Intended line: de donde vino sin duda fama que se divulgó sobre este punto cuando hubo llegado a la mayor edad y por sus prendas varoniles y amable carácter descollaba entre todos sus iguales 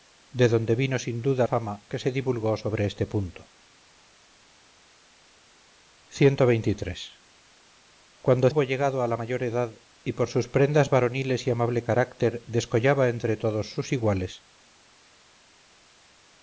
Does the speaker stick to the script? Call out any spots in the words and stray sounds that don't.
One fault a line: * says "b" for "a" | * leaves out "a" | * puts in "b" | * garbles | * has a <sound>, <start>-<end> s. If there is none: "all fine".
all fine